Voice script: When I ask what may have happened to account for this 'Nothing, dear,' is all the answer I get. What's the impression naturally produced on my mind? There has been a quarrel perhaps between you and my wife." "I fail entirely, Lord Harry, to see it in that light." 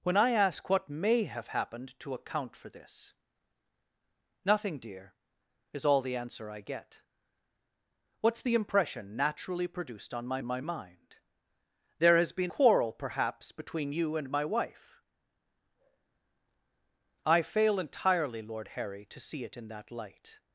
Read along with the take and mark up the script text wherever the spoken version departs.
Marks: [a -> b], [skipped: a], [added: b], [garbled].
When I ask what may have happened to account for this 'Nothing, dear,' is all the answer I get. What's the impression naturally produced on my [added: my] mind? There has been [skipped: a] quarrel perhaps between you and my wife." "I fail entirely, Lord Harry, to see it in that light."